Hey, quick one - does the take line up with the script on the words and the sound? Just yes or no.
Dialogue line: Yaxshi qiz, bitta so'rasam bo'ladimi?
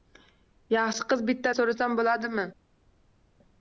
yes